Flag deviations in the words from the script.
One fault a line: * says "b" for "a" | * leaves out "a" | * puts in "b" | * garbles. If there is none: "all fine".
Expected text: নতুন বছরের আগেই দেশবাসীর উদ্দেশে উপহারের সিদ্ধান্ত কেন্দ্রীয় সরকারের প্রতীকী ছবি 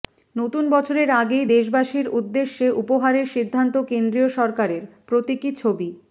all fine